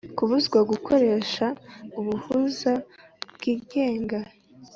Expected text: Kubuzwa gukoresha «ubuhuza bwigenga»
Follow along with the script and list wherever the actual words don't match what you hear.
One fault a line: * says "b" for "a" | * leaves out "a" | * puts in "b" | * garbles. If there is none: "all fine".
all fine